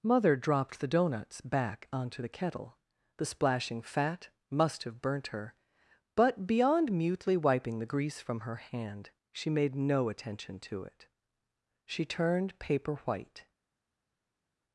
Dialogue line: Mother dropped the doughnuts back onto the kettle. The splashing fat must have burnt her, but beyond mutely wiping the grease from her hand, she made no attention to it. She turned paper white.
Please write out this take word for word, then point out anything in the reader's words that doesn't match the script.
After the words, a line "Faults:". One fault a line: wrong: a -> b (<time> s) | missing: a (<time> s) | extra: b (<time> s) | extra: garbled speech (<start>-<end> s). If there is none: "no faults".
Mother dropped the doughnuts back onto the kettle. The splashing fat must have burnt her, but beyond mutely wiping the grease from her hand, she made no attention to it. She turned paper white.
Faults:
no faults